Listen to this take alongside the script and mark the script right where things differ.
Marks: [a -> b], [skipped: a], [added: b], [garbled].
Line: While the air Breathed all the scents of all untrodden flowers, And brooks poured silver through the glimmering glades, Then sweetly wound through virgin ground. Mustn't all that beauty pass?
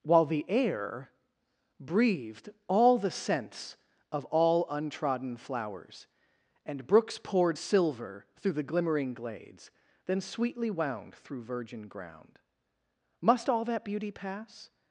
While the air Breathed all the scents of all untrodden flowers, And brooks poured silver through the glimmering glades, Then sweetly wound through virgin ground. [Mustn't -> Must] all that beauty pass?